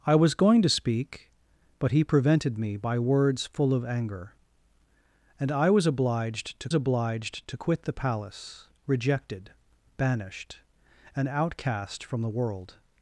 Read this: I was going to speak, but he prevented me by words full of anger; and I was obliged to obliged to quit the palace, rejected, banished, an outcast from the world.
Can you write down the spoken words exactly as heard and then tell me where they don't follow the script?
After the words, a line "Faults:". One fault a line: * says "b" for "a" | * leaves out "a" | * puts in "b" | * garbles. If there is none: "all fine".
I was going to speak, but he prevented me by words full of anger; and I was obliged to obliged to quit the palace, rejected, banished, an outcast from the world.
Faults:
all fine